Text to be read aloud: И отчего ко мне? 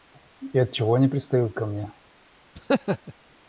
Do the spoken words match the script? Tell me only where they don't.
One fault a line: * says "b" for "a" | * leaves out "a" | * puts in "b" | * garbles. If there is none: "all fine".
* puts in "они пристают"